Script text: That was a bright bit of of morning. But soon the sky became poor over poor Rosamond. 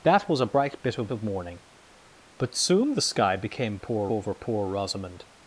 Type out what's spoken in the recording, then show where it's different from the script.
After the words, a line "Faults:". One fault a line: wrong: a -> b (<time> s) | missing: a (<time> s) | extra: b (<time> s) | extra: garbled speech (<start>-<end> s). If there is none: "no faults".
That was a bright bit of of morning. But soon the sky became poor over poor Rosamond.
Faults:
no faults